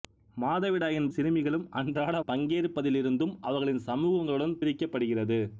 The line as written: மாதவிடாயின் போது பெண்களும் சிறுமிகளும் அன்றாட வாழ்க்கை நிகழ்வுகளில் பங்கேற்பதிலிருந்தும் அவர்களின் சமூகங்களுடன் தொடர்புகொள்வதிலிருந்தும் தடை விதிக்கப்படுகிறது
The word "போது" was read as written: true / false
false